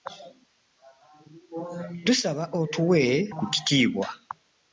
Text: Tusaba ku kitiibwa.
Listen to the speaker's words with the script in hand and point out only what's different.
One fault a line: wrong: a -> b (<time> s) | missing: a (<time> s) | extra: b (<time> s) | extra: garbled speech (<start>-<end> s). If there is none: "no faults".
extra: otuwe (2.6 s)